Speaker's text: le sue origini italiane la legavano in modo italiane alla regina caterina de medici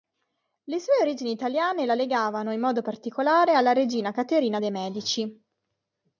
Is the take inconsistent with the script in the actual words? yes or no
yes